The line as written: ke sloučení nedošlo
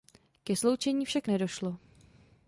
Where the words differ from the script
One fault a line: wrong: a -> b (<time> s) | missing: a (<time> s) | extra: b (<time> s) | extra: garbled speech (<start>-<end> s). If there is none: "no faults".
extra: však (1.1 s)